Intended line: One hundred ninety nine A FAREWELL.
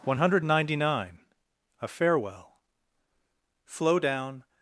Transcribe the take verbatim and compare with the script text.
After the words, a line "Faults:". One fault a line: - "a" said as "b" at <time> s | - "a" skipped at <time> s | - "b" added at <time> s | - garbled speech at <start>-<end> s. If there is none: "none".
One hundred ninety nine A FAREWELL. Flow down
Faults:
- "Flow down" added at 3.7 s